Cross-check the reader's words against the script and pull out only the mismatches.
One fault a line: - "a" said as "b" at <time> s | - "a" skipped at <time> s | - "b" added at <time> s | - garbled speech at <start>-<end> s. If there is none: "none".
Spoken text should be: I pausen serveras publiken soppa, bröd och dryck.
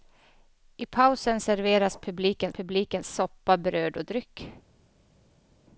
- "publiken" added at 2.5 s